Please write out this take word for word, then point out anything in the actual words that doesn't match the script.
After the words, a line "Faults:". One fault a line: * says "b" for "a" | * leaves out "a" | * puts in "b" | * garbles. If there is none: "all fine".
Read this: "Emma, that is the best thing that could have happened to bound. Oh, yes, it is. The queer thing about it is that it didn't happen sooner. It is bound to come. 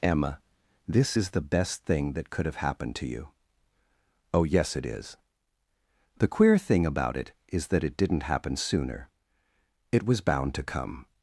"Emma, this is the best thing that could have happened to you. Oh, yes, it is. The queer thing about it is that it didn't happen sooner. It was bound to come.
Faults:
* says "this" for "that"
* says "you" for "bound"
* says "was" for "is"